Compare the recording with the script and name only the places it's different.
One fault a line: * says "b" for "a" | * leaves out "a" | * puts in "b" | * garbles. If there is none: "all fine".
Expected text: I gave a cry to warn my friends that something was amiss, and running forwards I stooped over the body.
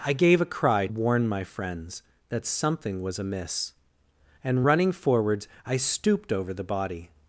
* leaves out "to"